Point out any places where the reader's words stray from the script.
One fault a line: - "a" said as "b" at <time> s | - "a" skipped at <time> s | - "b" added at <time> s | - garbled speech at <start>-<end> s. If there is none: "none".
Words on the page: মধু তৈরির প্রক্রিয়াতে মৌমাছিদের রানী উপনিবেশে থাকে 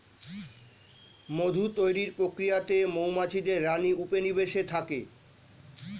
none